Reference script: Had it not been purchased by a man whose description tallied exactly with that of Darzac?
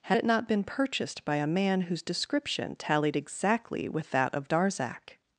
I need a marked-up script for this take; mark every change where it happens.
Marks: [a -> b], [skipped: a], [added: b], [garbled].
Had it not been purchased by a man whose description tallied exactly with that of Darzac?